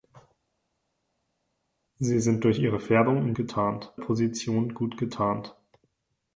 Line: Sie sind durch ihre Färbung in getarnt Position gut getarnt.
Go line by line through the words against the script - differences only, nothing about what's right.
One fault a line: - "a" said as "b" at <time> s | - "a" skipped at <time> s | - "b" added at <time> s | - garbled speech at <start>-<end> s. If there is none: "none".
none